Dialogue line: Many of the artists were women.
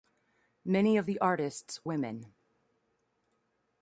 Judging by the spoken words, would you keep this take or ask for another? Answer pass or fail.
fail